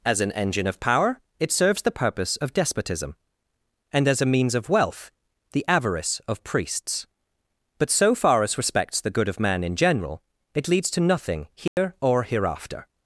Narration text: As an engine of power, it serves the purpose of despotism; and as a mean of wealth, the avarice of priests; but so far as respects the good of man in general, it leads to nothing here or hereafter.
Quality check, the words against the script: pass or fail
fail